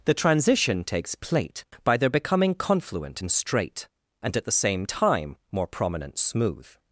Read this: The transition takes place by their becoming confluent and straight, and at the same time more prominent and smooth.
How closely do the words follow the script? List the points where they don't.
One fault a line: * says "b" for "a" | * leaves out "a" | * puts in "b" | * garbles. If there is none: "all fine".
* says "plate" for "place"
* leaves out "and"